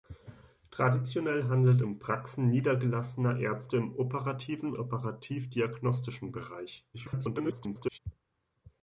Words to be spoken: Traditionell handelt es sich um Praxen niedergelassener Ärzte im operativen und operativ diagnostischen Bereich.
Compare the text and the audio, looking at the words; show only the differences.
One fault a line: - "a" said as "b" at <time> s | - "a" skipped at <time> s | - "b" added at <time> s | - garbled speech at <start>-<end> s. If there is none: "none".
- "es sich" skipped at 1.8 s
- "und" skipped at 4.7 s
- garbled speech at 6.9-8.0 s